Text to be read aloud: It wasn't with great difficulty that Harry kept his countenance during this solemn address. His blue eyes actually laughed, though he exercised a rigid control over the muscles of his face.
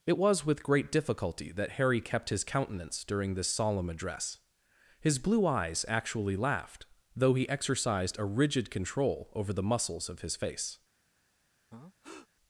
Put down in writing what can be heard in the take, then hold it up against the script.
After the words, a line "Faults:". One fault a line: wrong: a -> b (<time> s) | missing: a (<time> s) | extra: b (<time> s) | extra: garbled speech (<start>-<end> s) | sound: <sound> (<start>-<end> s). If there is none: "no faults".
It was with great difficulty that Harry kept his countenance during this solemn address. His blue eyes actually laughed, though he exercised a rigid control over the muscles of his face.
Faults:
wrong: wasn't -> was (0.1 s)
sound: breath (11.7-12.3 s)